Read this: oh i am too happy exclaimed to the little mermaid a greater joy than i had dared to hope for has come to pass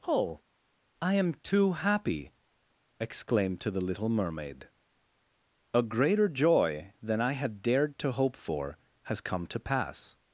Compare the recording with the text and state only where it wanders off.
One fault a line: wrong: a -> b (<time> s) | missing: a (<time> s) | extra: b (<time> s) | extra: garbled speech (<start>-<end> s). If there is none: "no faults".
no faults